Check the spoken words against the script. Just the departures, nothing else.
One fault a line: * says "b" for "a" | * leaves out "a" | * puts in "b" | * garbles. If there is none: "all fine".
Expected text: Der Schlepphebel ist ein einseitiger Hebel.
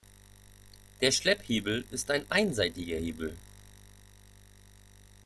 all fine